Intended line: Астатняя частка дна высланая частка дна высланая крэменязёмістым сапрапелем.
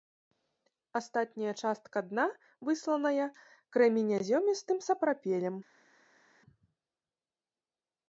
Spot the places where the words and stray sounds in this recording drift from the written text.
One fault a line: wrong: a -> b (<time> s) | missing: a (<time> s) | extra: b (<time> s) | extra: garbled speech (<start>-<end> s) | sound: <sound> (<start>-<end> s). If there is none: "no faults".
missing: частка дна высланая (3.3 s)